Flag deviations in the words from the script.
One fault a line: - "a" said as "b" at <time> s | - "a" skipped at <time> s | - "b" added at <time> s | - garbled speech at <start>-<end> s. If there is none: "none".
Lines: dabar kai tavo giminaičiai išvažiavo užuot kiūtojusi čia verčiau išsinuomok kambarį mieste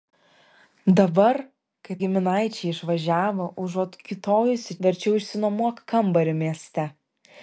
- "tavo" skipped at 2.0 s
- "čia" skipped at 4.8 s